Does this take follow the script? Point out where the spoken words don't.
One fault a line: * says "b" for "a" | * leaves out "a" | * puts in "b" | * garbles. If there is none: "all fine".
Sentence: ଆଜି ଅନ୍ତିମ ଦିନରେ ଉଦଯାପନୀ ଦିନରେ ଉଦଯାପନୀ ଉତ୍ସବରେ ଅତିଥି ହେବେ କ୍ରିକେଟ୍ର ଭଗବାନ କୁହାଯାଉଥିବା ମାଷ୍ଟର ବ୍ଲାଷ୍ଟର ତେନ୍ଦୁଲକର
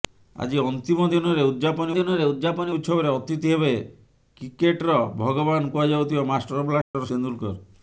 all fine